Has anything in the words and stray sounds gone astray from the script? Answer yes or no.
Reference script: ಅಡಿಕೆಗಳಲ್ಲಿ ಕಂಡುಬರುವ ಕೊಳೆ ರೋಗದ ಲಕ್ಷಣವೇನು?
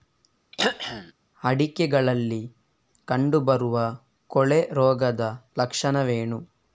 yes